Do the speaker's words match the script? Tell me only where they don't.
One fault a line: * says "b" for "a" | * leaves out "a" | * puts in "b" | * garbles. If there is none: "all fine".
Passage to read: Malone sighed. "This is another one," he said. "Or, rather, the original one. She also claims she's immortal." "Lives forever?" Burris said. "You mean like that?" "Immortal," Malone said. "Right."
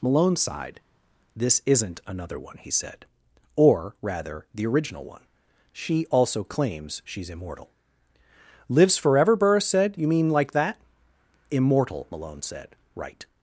* says "isn't" for "is"